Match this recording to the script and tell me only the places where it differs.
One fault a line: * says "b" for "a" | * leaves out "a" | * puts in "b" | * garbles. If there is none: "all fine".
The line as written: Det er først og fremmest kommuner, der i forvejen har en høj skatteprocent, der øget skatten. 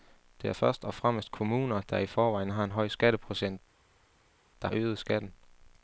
all fine